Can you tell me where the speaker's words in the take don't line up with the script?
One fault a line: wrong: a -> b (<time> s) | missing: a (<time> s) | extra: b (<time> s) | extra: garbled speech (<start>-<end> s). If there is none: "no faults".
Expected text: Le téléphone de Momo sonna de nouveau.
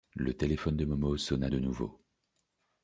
no faults